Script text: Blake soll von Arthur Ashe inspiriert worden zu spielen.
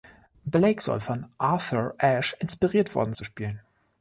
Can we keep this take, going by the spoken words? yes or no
yes